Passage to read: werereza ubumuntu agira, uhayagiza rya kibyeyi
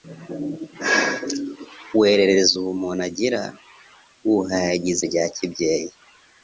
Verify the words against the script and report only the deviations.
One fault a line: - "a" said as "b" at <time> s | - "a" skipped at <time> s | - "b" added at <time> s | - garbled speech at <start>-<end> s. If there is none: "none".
none